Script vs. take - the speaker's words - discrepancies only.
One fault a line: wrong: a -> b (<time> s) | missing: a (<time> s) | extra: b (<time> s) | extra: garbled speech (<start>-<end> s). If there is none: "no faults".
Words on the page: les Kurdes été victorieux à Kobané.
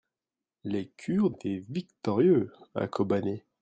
no faults